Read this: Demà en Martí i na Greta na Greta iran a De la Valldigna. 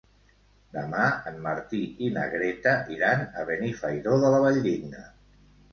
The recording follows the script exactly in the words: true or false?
false